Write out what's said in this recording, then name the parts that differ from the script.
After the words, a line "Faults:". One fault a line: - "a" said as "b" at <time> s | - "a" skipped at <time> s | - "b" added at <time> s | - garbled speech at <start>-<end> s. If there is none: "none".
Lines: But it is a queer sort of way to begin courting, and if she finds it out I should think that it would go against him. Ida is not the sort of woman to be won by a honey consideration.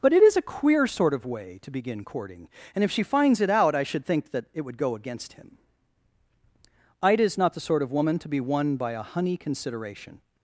But it is a queer sort of way to begin courting, and if she finds it out I should think that it would go against him. Ida is not the sort of woman to be won by a honey consideration.
Faults:
none